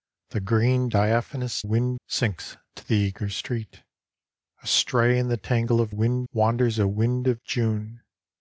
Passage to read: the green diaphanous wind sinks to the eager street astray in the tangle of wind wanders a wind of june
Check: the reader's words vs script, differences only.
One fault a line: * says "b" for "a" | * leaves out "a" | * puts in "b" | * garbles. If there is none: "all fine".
all fine